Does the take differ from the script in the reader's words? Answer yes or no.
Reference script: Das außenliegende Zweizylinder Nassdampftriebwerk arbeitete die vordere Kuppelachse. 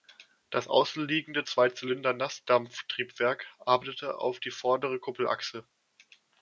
yes